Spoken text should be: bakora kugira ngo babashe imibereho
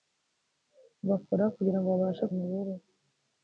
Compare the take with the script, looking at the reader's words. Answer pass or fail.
pass